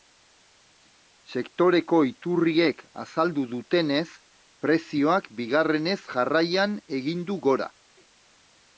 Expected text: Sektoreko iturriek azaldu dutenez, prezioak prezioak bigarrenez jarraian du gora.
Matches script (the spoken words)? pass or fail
fail